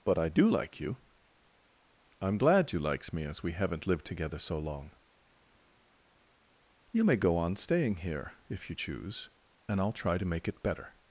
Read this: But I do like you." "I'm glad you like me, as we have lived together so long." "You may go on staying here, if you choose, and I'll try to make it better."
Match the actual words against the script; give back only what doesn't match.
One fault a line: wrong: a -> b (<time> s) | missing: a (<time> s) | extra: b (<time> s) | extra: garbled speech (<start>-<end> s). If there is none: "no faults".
wrong: like -> likes (2.8 s)
wrong: have -> haven't (3.5 s)